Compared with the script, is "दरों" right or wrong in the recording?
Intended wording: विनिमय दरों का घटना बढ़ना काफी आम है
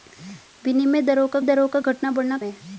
right